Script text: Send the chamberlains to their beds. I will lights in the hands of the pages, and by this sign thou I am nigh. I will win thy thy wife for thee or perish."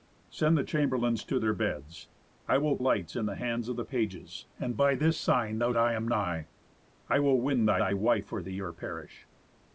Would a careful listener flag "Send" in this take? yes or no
no